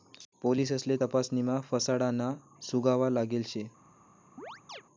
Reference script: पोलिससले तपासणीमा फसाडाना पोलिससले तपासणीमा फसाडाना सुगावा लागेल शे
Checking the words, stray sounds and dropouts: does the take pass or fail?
fail